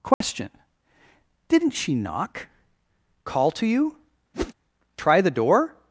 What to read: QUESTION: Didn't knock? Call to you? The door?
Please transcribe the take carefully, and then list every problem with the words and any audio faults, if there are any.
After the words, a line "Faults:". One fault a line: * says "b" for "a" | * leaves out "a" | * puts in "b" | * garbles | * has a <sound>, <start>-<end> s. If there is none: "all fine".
QUESTION: Didn't she knock? Call to you? Try the door?
Faults:
* has a dropout, 0.1-0.2 s
* puts in "she"
* has a whoosh, 4.3-4.5 s
* puts in "Try"